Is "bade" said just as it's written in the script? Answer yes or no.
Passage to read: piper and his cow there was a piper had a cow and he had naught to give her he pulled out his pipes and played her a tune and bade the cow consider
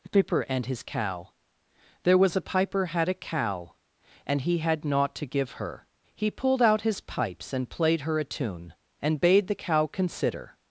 yes